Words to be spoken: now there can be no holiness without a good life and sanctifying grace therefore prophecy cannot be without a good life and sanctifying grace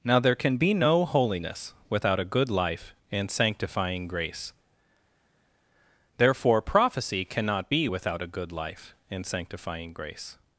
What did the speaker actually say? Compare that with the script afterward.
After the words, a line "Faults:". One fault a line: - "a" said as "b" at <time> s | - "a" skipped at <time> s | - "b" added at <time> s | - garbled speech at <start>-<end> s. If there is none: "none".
now there can be no holiness without a good life and sanctifying grace therefore prophecy cannot be without a good life and sanctifying grace
Faults:
none